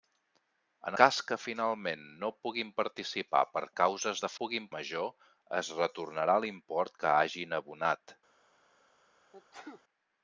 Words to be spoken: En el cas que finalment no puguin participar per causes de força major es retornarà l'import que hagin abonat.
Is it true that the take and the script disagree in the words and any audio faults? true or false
true